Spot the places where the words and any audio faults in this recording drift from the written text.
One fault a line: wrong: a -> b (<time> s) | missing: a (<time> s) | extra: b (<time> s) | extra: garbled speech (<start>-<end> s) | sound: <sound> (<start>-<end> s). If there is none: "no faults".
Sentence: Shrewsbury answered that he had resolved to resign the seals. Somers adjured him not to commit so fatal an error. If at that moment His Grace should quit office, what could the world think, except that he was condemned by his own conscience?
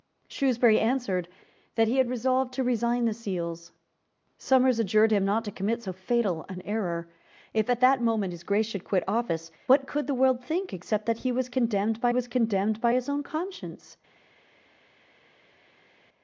extra: was condemned by (12.1 s)